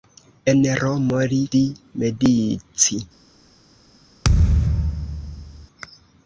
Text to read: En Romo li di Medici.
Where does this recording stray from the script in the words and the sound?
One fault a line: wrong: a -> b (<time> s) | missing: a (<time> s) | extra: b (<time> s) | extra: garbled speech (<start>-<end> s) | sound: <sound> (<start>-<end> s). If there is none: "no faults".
sound: thud (4.2-5.7 s)